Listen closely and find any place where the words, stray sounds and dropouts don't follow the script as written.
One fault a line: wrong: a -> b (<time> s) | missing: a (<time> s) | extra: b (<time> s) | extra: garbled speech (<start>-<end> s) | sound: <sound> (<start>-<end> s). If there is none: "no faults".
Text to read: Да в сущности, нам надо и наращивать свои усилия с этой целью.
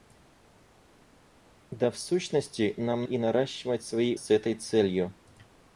missing: надо (3.1 s)
missing: усилия (4.2 s)